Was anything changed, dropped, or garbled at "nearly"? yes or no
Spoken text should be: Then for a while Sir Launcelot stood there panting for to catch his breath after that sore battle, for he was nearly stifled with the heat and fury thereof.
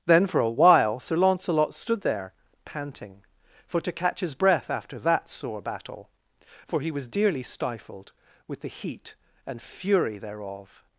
yes